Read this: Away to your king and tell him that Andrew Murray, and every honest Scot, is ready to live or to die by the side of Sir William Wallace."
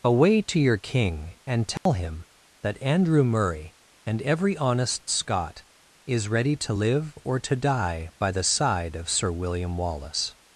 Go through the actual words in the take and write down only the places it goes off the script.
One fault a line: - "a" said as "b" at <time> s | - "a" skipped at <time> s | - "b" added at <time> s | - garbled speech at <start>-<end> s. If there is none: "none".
none